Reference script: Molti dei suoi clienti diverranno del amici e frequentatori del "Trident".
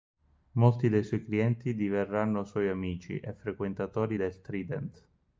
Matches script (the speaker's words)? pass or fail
fail